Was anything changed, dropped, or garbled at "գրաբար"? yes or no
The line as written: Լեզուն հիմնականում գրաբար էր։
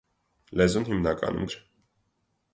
yes